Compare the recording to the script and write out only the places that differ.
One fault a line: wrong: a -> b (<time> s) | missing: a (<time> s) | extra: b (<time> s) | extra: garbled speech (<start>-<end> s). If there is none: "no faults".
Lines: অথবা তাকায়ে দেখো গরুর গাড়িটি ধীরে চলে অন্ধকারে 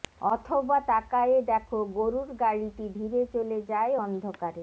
extra: যায় (3.7 s)